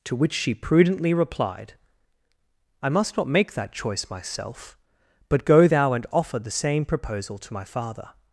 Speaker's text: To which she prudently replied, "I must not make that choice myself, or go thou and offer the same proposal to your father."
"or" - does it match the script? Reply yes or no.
no